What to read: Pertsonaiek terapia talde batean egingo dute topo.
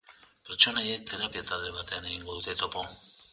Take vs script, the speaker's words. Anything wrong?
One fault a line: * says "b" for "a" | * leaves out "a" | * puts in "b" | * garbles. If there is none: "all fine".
all fine